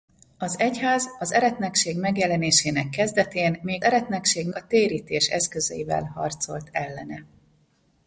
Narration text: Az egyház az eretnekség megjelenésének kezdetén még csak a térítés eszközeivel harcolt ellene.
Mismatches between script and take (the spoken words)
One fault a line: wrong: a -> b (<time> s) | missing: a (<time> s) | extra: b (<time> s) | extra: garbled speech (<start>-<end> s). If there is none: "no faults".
wrong: csak -> eretnekség (3.8 s)